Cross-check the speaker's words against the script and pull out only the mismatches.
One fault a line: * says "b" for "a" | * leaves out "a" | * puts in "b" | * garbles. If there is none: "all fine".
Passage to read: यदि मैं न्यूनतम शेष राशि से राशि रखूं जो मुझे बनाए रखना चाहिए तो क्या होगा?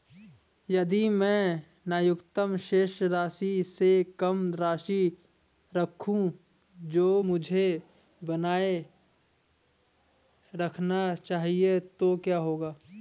* puts in "कम"